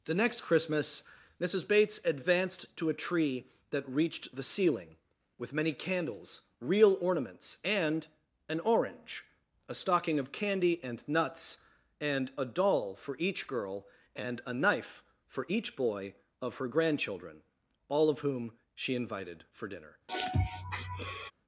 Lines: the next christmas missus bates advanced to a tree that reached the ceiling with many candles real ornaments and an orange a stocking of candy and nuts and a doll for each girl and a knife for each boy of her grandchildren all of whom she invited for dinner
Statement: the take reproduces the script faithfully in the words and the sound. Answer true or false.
false